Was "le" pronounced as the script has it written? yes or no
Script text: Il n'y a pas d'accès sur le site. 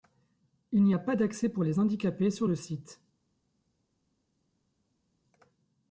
yes